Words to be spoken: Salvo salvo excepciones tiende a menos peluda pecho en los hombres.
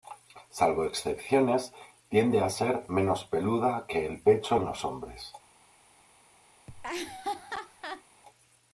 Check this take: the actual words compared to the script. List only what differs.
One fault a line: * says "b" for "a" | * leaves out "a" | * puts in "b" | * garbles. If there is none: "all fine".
* leaves out "salvo"
* puts in "ser"
* puts in "que el"